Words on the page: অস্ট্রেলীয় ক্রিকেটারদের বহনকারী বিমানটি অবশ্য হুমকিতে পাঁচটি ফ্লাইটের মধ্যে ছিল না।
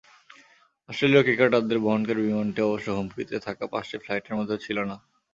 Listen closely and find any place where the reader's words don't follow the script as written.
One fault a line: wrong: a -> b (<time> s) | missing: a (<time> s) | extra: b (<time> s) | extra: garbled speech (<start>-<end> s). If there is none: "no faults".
extra: থাকা (3.5 s)